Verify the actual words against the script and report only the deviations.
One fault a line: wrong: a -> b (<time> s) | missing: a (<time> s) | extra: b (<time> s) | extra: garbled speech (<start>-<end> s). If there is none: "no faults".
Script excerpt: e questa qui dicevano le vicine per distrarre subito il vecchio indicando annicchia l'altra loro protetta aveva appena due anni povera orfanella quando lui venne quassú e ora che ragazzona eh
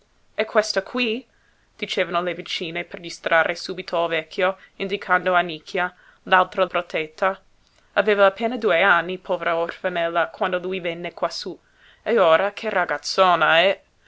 missing: loro (6.7 s)